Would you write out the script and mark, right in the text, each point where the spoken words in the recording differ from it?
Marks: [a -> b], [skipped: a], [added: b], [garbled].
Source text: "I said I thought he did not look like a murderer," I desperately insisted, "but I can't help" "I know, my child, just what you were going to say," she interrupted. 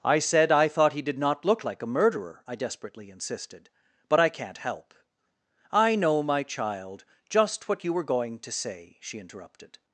"I said I thought he did not look like a murderer," I desperately insisted, "but I can't help" "I know, my child, just what you were going to say," she interrupted.